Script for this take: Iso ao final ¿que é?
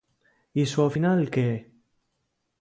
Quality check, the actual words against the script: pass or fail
pass